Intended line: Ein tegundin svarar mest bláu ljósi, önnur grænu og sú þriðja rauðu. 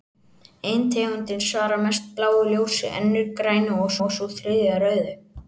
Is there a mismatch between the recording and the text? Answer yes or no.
yes